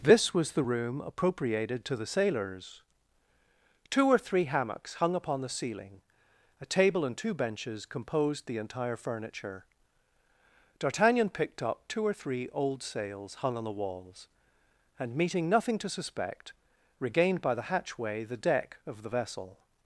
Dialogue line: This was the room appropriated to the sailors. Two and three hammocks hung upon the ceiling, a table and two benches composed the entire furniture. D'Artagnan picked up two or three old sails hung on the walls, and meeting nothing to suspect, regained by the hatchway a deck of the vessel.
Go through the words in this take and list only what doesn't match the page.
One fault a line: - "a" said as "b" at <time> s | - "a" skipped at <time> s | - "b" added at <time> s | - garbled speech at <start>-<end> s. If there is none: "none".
- "and" said as "or" at 4.1 s
- "a" said as "the" at 18.2 s